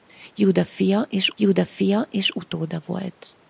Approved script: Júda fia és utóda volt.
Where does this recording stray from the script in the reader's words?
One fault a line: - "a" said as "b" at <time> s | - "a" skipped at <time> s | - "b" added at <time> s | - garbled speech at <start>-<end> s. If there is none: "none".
- "júda fia és" added at 1.4 s